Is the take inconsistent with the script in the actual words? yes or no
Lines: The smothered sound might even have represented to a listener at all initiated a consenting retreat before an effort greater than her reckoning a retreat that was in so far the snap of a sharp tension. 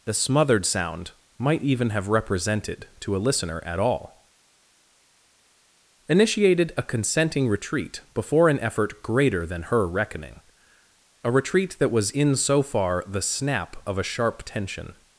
no